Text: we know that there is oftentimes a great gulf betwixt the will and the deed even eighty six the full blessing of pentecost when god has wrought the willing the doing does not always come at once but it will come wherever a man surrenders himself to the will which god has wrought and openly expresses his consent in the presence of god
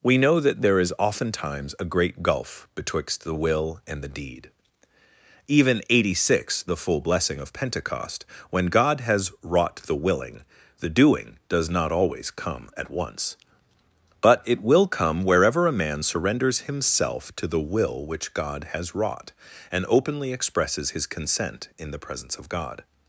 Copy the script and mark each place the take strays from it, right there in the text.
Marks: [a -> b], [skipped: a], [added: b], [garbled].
we know that there is oftentimes a great gulf betwixt the will and the deed even eighty six the full blessing of pentecost when god has wrought the willing the doing does not always come at once but it will come wherever a man surrenders himself to the will which god has wrought and openly expresses his consent in the presence of god